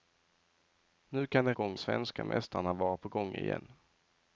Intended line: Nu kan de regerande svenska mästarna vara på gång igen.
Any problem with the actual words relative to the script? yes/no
yes